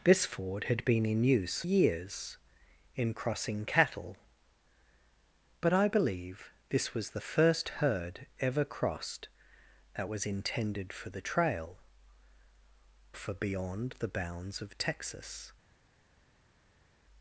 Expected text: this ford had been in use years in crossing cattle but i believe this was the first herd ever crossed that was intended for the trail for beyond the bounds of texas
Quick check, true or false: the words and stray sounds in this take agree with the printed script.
true